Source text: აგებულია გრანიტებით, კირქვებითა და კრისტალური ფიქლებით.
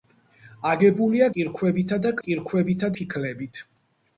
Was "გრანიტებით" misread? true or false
true